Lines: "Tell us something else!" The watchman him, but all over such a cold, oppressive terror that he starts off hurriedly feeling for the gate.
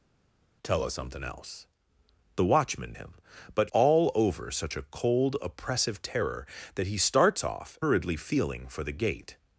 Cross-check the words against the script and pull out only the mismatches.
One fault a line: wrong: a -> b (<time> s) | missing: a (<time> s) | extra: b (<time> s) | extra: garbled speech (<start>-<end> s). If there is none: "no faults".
no faults